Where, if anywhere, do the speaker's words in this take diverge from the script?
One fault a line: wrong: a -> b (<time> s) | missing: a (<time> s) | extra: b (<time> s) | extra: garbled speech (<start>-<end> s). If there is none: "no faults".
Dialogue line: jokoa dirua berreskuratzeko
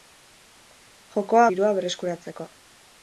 no faults